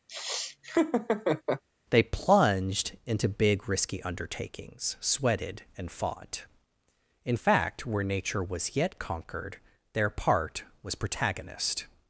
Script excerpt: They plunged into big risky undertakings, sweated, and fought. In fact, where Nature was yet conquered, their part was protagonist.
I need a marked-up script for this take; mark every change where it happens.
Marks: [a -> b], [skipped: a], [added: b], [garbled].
They plunged into big risky undertakings, sweated, and fought. In fact, where Nature was yet conquered, their part was protagonist.